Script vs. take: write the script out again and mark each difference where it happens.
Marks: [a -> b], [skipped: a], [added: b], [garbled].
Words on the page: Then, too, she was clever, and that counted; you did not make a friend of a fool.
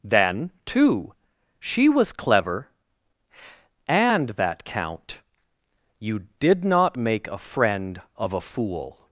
Then, too, she was clever, and that [counted; -> count] you did not make a friend of a fool.